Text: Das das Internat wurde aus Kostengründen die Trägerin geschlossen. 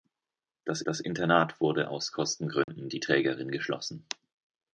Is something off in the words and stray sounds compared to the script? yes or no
yes